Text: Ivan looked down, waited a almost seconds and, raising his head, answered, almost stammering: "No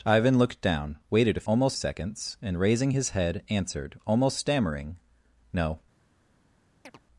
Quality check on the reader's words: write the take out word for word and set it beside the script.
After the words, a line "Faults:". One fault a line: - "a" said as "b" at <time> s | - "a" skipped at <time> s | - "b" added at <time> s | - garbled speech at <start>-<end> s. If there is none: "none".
Ivan looked down, waited a almost seconds and, raising his head, answered, almost stammering: "No
Faults:
none